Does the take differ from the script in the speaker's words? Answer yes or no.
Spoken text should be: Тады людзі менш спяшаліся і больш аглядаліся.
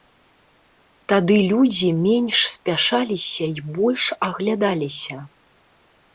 no